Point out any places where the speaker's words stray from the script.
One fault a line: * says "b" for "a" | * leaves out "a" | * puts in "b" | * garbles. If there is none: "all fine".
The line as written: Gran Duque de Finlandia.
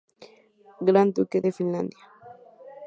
all fine